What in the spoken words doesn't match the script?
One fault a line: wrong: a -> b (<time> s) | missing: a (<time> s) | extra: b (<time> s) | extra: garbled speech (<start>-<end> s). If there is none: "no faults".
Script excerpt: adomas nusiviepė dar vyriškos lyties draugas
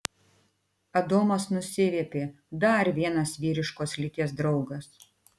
extra: vienas (3.0 s)